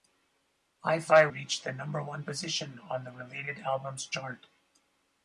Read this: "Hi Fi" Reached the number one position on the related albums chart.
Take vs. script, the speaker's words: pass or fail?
pass